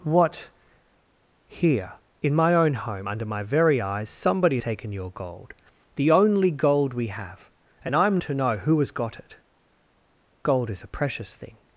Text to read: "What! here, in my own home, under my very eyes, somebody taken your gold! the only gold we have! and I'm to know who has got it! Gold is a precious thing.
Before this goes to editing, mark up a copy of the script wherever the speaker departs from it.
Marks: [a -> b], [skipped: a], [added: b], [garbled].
"What! here, in my own home, under my very eyes, somebody taken your gold! the only gold we have! and I'm to know who has got it! Gold is a precious thing.